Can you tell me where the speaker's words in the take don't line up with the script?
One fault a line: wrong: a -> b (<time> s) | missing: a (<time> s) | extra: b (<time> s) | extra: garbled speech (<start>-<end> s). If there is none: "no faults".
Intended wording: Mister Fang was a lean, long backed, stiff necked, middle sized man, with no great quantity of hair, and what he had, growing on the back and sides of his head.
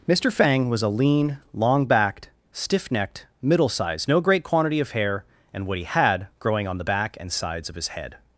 missing: man with (4.1 s)